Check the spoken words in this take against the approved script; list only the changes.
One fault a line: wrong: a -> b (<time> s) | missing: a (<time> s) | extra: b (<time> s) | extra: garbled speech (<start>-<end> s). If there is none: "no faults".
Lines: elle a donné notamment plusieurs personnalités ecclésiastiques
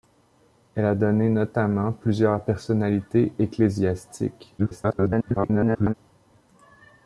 extra: garbled speech (4.6-5.9 s)